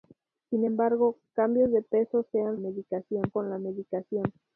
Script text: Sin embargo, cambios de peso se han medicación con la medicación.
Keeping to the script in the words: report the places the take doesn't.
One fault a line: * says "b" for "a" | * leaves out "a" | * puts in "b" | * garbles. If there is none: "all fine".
all fine